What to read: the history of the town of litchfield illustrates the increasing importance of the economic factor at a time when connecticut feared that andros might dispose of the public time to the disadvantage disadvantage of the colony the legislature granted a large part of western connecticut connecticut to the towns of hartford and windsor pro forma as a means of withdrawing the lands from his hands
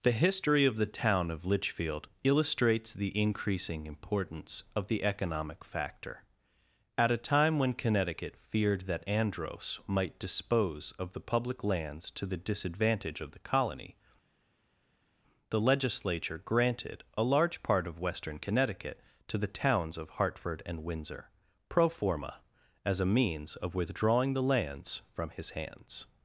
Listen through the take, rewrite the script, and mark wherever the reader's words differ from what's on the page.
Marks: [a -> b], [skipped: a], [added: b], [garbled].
the history of the town of litchfield illustrates the increasing importance of the economic factor at a time when connecticut feared that andros might dispose of the public [time -> lands] to the disadvantage [skipped: disadvantage] of the colony the legislature granted a large part of western connecticut [skipped: connecticut] to the towns of hartford and windsor pro forma as a means of withdrawing the lands from his hands